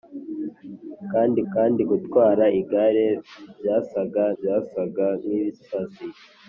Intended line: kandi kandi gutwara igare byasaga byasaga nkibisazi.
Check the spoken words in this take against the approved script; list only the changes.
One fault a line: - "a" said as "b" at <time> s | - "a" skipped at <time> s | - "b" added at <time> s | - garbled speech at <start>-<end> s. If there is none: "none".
none